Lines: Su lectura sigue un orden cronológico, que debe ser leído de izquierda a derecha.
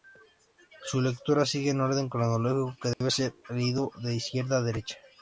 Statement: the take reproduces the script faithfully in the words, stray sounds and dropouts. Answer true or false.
false